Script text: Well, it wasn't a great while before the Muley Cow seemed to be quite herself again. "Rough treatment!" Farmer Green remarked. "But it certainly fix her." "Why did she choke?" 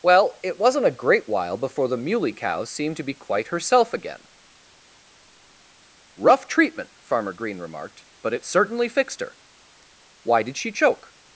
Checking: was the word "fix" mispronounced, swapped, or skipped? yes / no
yes